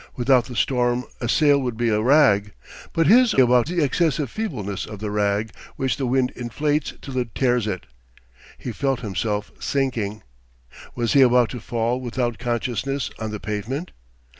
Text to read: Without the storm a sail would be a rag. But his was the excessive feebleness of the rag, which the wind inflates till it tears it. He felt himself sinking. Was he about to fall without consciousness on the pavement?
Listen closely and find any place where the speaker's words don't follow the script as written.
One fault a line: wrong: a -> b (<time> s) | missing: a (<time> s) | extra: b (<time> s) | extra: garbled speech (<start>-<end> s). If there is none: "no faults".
wrong: was -> about (3.4 s)